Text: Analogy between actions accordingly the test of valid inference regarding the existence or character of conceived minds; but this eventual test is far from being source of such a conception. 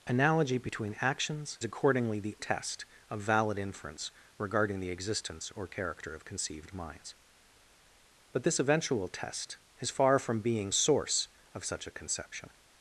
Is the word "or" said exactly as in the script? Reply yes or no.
yes